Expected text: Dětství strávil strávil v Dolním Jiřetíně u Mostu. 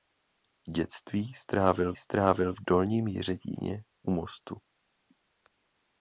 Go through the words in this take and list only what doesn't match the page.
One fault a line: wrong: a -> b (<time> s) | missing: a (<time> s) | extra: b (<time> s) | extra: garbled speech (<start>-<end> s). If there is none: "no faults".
no faults